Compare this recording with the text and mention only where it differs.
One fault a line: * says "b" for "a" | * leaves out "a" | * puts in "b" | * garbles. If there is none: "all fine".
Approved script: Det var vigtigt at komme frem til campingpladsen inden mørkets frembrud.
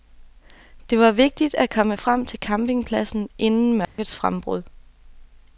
all fine